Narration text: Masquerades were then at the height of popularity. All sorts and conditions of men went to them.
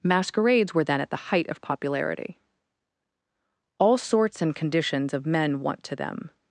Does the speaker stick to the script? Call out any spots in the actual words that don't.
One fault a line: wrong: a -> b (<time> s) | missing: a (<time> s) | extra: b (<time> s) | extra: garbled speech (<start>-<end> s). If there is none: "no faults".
wrong: went -> want (5.6 s)